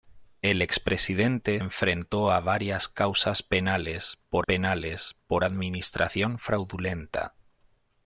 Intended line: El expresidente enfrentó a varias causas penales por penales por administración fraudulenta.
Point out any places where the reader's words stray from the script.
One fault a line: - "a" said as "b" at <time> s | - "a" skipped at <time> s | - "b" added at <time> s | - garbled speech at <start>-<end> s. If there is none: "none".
none